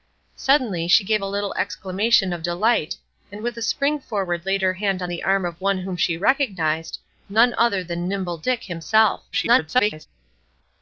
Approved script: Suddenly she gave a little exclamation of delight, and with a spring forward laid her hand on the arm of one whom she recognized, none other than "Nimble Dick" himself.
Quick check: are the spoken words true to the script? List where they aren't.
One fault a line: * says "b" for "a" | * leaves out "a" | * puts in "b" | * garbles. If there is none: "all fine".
* garbles